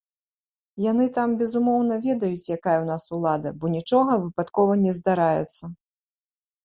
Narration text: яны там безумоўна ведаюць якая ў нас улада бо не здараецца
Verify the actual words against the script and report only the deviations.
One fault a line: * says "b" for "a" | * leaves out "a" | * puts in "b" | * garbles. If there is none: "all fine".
* puts in "нічога выпадкова"